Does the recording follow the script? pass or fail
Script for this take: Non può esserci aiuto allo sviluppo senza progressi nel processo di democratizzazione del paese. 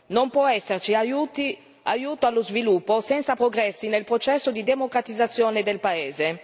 pass